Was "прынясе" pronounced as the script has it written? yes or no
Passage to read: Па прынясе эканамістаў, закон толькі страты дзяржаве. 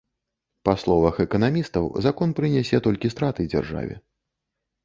no